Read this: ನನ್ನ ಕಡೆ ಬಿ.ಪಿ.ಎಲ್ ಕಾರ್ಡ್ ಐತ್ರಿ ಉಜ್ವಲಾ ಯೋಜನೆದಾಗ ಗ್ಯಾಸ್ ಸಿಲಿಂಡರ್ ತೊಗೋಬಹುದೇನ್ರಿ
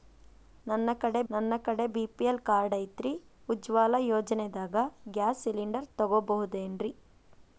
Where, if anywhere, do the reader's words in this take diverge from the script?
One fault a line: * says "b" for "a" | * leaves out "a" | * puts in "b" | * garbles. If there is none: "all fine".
* puts in "ನನ್ನ ಕಡೆ"